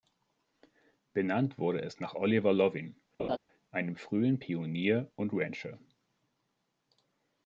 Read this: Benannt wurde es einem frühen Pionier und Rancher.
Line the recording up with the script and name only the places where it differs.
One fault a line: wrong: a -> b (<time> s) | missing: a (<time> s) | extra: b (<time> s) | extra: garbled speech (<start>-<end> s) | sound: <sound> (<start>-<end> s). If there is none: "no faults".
extra: nach Oliver Loving (2.0 s)
sound: laugh (3.2-3.4 s)